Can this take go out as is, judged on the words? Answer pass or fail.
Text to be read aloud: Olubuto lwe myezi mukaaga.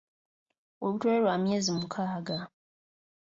fail